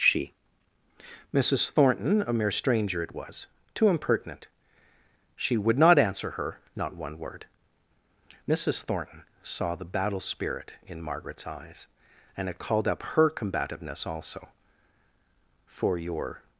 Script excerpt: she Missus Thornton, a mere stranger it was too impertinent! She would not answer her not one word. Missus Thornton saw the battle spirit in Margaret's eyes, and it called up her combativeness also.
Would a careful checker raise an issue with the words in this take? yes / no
yes